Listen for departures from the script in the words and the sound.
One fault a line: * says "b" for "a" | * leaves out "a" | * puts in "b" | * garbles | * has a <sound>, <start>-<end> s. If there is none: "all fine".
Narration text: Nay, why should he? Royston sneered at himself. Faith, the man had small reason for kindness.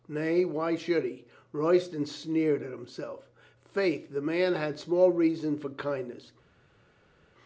all fine